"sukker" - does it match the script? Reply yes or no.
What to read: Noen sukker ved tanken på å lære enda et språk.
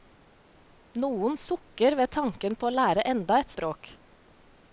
yes